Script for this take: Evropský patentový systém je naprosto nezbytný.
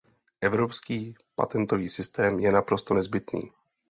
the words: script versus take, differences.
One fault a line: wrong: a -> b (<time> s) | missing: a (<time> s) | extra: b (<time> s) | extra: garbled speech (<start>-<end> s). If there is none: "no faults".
no faults